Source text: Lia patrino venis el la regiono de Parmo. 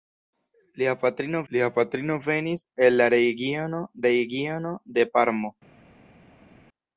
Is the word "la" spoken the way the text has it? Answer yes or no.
yes